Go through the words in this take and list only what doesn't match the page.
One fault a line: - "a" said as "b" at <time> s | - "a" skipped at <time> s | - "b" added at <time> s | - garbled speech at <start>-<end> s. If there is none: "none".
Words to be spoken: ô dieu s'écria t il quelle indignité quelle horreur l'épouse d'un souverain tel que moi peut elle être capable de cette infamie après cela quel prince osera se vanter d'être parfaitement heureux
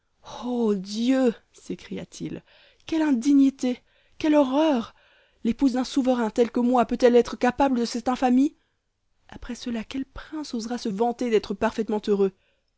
none